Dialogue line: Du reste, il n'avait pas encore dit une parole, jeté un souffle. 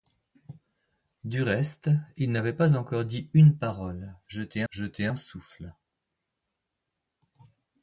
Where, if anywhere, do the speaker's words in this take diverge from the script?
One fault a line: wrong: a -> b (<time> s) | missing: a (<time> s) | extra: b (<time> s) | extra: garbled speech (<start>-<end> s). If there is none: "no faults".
extra: jeté (4.7 s)